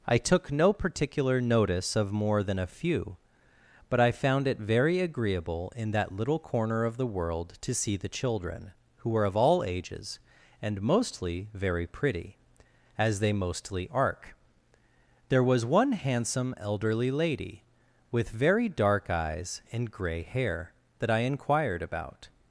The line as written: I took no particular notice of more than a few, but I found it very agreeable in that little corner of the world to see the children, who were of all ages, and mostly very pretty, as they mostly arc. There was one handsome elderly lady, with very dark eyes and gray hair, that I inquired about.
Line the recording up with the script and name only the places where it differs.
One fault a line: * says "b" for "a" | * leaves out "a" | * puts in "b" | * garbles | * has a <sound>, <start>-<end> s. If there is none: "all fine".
all fine